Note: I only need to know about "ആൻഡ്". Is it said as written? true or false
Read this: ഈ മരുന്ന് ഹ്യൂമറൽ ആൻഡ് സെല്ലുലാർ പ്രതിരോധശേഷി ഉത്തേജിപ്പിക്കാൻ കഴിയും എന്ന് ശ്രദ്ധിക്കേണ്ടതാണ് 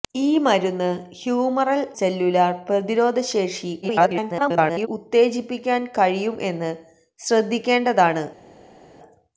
false